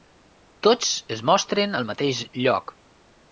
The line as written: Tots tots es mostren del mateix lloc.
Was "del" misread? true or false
true